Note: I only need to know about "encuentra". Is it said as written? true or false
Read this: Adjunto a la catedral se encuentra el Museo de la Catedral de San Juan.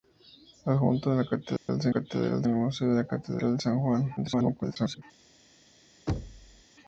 false